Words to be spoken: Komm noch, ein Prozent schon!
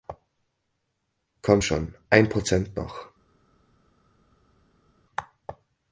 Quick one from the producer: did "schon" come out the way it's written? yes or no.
no